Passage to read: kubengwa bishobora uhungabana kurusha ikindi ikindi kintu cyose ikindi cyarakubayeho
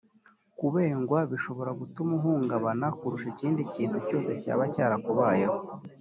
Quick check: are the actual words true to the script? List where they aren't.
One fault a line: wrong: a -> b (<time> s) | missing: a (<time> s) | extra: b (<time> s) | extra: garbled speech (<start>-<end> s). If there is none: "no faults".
extra: gutuma (1.8 s)
missing: ikindi (3.6 s)
wrong: ikindi -> cyaba (4.4 s)